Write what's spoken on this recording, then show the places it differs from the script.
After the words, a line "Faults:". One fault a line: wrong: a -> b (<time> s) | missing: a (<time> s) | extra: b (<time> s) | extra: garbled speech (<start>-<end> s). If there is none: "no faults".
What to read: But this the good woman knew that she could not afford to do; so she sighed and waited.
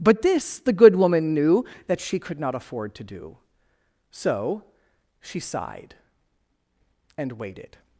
But this the good woman knew that she could not afford to do; so she sighed and waited.
Faults:
no faults